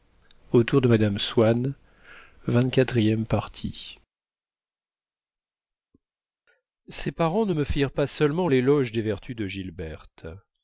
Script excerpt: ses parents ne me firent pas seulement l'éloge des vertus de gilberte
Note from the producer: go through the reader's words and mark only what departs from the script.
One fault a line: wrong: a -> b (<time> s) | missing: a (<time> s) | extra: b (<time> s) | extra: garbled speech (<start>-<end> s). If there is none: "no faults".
no faults